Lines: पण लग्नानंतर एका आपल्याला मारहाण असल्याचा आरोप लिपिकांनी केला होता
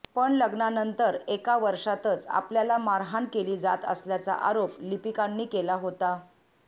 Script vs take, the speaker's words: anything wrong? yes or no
yes